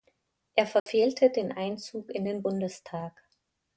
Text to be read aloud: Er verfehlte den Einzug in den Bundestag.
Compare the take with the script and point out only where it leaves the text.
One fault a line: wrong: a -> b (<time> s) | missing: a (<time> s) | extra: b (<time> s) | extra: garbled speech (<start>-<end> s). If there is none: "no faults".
no faults